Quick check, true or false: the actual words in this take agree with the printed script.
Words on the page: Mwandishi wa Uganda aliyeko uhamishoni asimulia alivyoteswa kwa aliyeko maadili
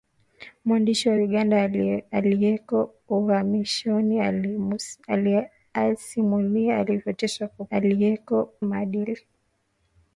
true